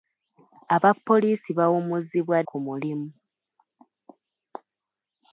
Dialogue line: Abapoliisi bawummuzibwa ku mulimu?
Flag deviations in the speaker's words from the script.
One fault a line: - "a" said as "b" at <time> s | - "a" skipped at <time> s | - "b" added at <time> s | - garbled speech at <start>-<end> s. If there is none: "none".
none